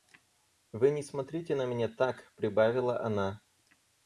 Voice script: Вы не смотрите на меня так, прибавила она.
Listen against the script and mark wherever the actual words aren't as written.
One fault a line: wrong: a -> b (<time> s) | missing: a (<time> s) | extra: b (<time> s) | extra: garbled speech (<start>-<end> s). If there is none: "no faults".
no faults